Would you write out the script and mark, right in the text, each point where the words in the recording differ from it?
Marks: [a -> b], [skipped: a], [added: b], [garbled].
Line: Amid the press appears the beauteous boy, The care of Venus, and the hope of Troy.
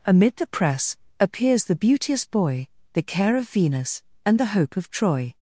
Amid the press appears the beauteous boy, The care of Venus, and the hope of Troy.